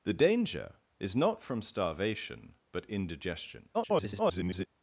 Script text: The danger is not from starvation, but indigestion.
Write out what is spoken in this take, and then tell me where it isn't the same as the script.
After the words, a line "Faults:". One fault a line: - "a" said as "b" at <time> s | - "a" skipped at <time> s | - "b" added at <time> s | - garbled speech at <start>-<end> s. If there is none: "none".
The danger is not from starvation, but indigestion. [garbled]
Faults:
- garbled speech at 3.7-4.7 s